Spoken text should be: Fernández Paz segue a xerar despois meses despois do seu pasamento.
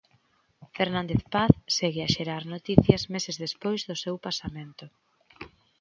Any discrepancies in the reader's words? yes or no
yes